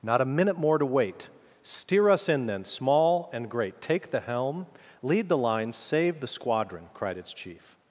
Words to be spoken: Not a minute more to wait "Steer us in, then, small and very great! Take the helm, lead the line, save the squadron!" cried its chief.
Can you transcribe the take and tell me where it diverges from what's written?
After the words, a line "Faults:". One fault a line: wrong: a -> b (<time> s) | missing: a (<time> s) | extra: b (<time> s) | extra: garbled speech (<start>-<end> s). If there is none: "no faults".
Not a minute more to wait "Steer us in, then, small and great! Take the helm, lead the line, save the squadron!" cried its chief.
Faults:
missing: very (3.5 s)